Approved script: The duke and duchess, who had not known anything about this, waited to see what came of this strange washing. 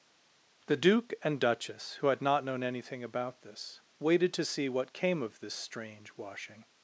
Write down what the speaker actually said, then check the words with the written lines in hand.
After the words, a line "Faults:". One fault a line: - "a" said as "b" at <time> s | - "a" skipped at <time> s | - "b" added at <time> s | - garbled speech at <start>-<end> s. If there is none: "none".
The duke and duchess, who had not known anything about this, waited to see what came of this strange washing.
Faults:
none